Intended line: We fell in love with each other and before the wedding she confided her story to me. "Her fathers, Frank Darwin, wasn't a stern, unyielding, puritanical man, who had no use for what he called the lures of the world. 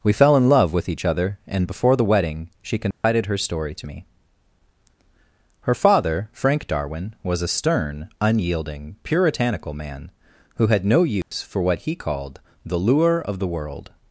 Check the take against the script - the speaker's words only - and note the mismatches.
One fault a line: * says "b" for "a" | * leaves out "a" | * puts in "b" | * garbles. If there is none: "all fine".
* says "father" for "fathers"
* says "was" for "wasn't"
* says "lure" for "lures"